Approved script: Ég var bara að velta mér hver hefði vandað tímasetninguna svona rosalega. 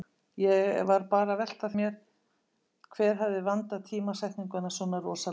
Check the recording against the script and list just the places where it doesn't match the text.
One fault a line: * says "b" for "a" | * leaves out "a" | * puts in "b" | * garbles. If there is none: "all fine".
all fine